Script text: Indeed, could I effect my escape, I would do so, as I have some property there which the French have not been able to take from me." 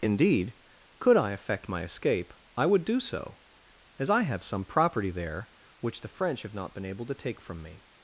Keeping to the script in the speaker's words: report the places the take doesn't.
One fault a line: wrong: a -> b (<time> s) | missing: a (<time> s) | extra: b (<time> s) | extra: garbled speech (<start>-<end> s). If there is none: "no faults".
no faults